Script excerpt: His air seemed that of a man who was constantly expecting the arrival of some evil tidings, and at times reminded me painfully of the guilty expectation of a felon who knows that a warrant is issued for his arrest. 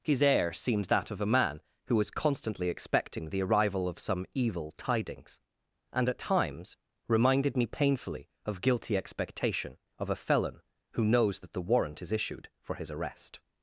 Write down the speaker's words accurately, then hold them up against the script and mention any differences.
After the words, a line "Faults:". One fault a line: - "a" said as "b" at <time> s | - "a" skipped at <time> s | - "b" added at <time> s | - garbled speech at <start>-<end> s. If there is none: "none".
His air seemed that of a man who was constantly expecting the arrival of some evil tidings, and at times reminded me painfully of guilty expectation of a felon who knows that the warrant is issued for his arrest.
Faults:
- "the" skipped at 8.6 s
- "a" said as "the" at 11.5 s